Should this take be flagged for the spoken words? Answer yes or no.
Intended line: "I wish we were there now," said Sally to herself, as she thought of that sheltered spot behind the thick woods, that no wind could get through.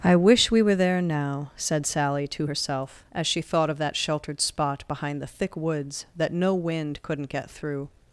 yes